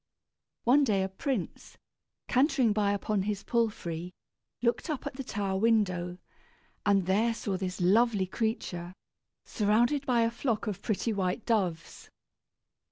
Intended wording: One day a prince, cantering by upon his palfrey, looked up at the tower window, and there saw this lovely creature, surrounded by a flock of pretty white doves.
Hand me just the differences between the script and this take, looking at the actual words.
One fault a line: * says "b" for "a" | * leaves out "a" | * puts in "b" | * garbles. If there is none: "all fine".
all fine